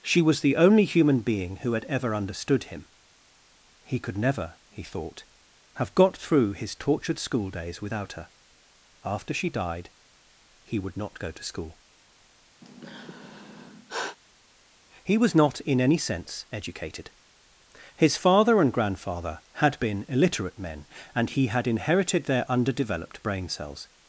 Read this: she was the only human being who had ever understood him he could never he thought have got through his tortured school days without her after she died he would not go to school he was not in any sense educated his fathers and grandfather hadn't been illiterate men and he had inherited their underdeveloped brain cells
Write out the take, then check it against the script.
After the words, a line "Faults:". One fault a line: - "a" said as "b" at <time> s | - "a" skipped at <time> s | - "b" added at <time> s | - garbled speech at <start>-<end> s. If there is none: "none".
she was the only human being who had ever understood him he could never he thought have got through his tortured school days without her after she died he would not go to school he was not in any sense educated his father and grandfather had been illiterate men and he had inherited their underdeveloped brain cells
Faults:
- "fathers" said as "father" at 18.2 s
- "hadn't" said as "had" at 19.5 s